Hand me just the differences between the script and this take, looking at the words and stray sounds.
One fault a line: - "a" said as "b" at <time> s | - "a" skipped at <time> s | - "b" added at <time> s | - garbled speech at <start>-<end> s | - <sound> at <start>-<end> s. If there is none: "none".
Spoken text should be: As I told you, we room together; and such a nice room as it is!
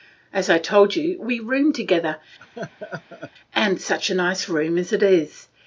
- laugh at 2.4-3.3 s